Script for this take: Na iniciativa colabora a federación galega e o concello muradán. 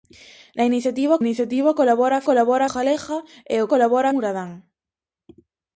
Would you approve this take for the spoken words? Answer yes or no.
no